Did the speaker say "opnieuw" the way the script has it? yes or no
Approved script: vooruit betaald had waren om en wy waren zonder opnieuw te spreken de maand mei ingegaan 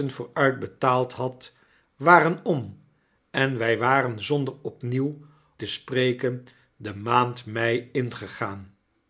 yes